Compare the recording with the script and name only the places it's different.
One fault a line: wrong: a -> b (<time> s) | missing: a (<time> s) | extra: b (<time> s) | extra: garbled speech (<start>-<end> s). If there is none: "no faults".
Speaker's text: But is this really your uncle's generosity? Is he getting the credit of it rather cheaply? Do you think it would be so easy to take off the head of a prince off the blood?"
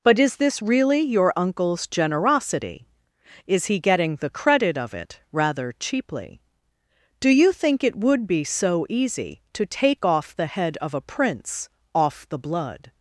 no faults